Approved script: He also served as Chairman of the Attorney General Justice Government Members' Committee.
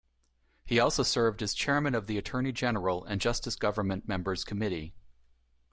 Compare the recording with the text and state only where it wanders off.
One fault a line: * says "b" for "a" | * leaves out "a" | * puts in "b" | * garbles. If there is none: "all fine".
* puts in "and"